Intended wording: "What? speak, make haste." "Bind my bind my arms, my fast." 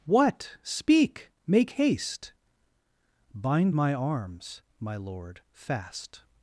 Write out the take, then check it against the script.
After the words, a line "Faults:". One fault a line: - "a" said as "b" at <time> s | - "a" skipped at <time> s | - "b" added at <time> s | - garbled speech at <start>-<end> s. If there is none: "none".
"What? speak, make haste." "Bind my arms, my lord, fast."
Faults:
- "bind" said as "arms" at 3.9 s
- "arms my" said as "lord" at 5.0 s